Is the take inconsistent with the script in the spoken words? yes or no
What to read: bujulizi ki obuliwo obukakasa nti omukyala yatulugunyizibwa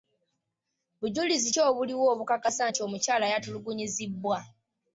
no